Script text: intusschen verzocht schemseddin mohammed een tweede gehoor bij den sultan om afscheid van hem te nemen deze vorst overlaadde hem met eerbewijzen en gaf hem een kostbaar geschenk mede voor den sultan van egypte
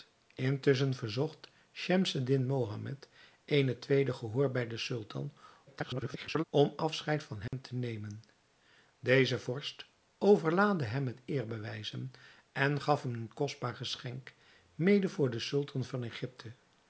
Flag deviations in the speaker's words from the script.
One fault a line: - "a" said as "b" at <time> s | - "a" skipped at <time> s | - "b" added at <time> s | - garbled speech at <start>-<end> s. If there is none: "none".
- garbled speech at 5.7-6.4 s